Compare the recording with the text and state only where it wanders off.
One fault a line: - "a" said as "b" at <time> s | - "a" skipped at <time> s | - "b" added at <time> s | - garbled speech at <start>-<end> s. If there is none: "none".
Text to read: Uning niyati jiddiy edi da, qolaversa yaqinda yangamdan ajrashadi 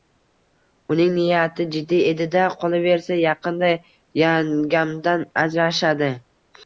none